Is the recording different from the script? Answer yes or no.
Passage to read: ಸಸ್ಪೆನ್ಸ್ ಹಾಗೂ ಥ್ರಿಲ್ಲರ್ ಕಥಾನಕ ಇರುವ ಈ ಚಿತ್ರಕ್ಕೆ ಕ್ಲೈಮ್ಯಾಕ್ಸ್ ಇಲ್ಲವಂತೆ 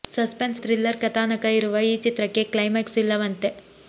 yes